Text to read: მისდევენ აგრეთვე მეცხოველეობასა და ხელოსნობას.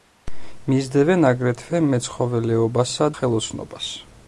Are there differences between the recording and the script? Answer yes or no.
yes